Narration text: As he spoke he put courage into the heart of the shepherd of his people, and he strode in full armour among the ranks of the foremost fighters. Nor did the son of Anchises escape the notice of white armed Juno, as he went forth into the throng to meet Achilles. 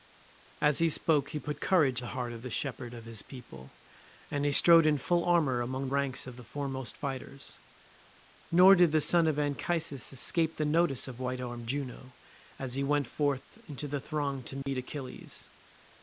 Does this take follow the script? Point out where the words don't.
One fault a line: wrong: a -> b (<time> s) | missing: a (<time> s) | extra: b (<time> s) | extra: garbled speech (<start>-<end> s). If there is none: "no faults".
missing: into (2.0 s)
missing: the (5.9 s)